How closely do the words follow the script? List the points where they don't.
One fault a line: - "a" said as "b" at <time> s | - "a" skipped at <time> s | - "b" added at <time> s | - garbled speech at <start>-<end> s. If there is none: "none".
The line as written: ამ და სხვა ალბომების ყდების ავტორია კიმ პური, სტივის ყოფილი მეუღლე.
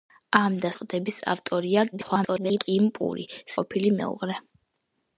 - "სხვა ალბომების" skipped at 0.7 s
- garbled speech at 1.9-2.6 s
- "სტივის" skipped at 3.3 s